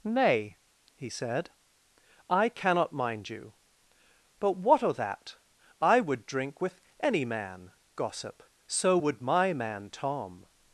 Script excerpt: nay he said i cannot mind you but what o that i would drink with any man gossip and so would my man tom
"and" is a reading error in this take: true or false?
true